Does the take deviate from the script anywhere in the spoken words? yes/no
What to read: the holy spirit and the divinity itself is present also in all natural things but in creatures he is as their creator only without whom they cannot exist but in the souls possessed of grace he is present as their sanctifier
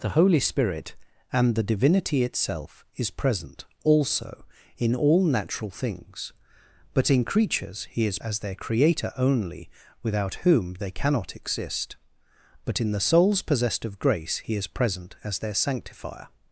no